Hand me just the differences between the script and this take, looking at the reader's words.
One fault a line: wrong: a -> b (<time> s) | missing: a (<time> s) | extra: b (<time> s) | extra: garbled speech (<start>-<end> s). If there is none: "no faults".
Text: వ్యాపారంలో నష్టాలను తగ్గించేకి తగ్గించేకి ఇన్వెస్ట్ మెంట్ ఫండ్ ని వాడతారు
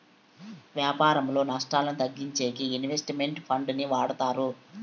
missing: తగ్గించేకి (2.6 s)